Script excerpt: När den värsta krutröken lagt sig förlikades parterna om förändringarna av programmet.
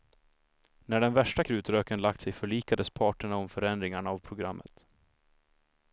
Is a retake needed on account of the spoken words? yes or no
no